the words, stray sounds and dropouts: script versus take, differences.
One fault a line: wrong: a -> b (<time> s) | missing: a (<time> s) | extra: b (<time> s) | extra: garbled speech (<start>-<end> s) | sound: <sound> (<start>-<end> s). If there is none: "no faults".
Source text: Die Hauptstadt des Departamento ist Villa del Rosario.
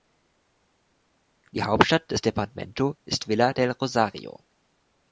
no faults